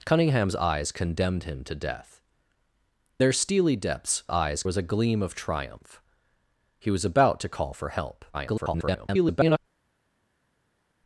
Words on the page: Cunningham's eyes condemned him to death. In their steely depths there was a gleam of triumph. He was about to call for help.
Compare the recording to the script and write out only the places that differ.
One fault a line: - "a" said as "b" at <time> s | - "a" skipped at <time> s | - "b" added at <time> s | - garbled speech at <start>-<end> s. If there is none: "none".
- "In" skipped at 2.2 s
- "there" said as "eyes" at 4.3 s
- garbled speech at 8.3-9.6 s